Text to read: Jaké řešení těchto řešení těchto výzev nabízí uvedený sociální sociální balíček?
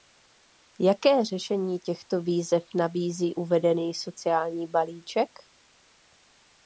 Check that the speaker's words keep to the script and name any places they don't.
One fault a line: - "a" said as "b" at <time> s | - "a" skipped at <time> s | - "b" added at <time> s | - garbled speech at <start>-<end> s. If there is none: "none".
- "řešení těchto" skipped at 2.2 s
- "sociální" skipped at 4.7 s